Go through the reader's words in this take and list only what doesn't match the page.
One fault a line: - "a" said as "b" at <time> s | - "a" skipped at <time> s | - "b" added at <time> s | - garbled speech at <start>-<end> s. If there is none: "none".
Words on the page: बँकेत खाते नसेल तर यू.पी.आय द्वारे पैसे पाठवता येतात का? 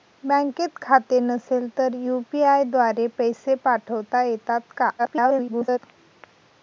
- garbled speech at 5.0-5.8 s